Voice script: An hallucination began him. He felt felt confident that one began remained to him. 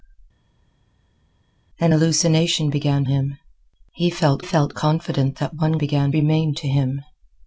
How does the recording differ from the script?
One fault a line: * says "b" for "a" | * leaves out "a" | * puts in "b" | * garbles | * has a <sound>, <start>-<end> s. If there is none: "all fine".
all fine